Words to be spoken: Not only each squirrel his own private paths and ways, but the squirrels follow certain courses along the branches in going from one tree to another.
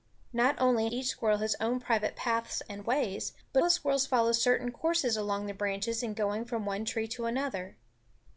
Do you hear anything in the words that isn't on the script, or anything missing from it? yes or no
no